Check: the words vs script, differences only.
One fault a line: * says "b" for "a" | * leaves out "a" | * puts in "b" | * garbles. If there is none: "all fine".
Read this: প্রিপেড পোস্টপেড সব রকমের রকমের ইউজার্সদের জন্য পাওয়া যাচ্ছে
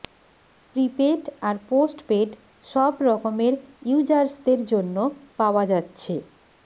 * puts in "আর"
* leaves out "রকমের"